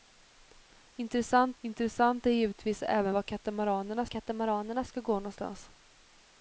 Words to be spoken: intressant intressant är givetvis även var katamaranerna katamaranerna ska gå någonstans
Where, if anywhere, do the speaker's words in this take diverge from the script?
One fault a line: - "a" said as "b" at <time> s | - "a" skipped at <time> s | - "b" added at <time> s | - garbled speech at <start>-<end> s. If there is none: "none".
none